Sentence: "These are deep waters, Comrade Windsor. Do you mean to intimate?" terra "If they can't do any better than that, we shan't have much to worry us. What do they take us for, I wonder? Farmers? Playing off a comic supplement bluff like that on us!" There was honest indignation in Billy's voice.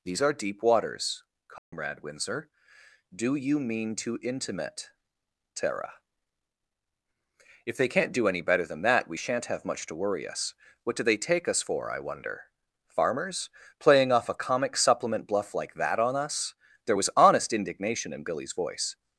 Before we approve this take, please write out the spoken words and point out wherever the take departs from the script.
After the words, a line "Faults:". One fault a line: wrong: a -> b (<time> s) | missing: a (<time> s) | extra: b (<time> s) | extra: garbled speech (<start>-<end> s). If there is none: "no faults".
"These are deep waters, Comrade Windsor. Do you mean to intimate?" terra "If they can't do any better than that, we shan't have much to worry us. What do they take us for, I wonder? Farmers? Playing off a comic supplement bluff like that on us!" There was honest indignation in Billy's voice.
Faults:
no faults